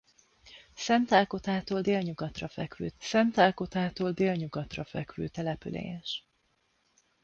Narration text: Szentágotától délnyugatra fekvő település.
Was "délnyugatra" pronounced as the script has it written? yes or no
yes